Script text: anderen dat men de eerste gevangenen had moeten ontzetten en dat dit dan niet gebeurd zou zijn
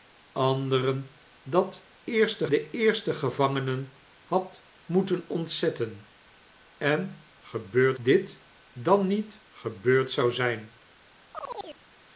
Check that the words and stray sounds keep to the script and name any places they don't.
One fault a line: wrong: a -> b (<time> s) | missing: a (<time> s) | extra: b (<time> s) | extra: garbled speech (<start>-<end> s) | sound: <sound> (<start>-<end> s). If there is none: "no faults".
wrong: men -> eerste (2.0 s)
wrong: dat -> gebeurd (7.4 s)
sound: chirp (11.3-11.8 s)